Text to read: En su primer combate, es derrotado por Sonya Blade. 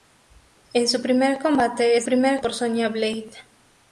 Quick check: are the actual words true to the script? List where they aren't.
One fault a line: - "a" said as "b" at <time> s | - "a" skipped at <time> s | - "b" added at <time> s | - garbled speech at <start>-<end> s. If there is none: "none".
- "derrotado" said as "primer" at 2.0 s